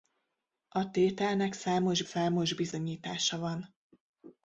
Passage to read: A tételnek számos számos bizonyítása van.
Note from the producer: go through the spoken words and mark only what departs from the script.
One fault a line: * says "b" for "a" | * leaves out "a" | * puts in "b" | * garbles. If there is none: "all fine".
all fine